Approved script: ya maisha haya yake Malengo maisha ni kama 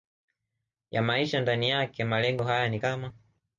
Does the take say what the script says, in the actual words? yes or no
no